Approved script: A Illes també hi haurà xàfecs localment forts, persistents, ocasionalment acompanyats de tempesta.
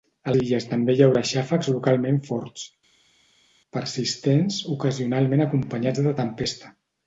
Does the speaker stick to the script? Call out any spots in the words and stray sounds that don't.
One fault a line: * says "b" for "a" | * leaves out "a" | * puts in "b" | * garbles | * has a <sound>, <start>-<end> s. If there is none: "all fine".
all fine